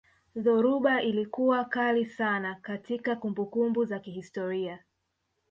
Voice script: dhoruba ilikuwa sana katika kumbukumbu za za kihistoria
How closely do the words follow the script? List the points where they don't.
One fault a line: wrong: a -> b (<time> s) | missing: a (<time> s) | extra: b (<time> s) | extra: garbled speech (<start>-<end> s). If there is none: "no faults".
extra: kali (1.6 s)
missing: za (4.0 s)